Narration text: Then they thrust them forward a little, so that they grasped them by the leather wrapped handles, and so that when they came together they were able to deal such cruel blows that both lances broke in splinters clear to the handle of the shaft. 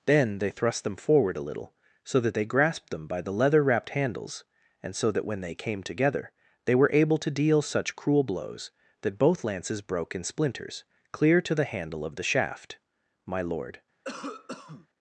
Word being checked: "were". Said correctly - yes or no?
yes